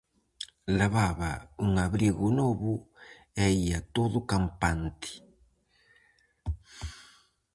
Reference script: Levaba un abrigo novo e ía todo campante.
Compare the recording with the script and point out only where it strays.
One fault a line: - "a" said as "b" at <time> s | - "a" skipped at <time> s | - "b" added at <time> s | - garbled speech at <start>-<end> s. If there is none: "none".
none